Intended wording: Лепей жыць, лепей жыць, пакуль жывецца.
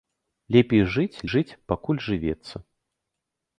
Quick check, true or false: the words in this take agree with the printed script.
false